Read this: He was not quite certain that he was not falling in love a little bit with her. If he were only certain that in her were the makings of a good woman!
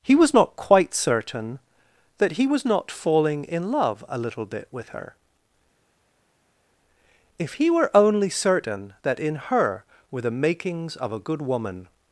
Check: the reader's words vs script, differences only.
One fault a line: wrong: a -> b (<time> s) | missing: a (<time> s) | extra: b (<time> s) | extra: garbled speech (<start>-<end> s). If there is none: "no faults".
no faults